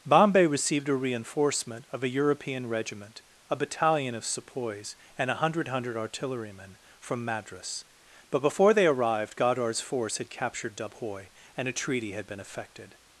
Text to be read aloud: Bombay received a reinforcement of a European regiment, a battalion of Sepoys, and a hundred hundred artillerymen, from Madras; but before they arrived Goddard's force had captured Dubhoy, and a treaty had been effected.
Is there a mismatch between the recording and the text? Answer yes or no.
no